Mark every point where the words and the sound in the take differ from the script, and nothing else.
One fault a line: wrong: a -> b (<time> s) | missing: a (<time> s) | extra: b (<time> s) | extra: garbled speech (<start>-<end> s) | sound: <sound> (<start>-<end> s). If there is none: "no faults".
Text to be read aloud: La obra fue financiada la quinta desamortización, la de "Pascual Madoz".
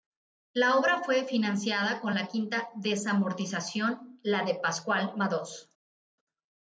extra: con (2.0 s)